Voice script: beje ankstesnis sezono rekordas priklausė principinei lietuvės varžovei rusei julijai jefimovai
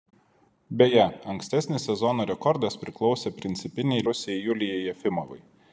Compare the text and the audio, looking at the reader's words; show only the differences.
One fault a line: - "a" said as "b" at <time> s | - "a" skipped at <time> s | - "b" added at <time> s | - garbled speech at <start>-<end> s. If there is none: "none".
- "lietuvės varžovei" skipped at 4.1 s